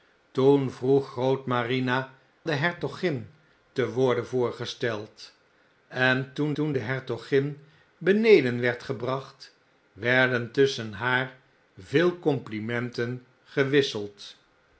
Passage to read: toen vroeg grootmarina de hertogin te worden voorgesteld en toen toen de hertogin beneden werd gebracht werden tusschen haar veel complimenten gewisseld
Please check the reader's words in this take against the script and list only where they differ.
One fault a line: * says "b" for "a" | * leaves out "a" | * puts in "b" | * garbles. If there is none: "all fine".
all fine